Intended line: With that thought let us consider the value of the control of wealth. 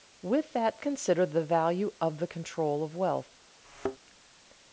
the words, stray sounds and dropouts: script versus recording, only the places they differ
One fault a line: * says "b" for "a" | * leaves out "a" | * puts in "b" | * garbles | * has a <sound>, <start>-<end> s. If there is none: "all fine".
* leaves out "thought let us"
* has a thud, 3.6-4.0 s